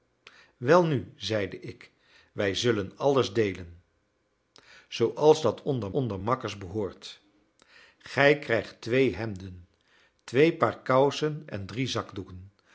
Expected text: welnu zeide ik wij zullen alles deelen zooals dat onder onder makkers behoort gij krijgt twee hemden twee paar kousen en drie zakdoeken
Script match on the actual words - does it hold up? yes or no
yes